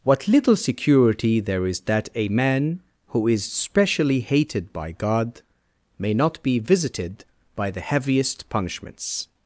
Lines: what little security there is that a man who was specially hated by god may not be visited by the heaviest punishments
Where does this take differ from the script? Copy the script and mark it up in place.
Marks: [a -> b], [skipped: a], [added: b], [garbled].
what little security there is that a man who [was -> is] specially hated by god may not be visited by the heaviest punishments